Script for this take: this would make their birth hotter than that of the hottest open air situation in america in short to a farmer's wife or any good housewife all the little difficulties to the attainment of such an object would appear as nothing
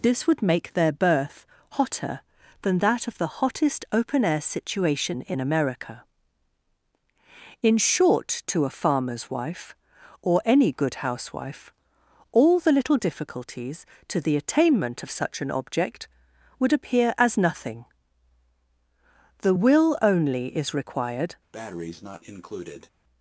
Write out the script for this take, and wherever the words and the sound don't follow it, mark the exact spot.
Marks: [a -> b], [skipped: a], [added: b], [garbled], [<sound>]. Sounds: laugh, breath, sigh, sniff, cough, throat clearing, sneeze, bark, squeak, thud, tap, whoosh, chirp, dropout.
this would make their birth hotter than that of the hottest open air situation in america in short to a farmer's wife or any good housewife all the little difficulties to the attainment of such an object would appear as nothing [added: the will only is required] [breath]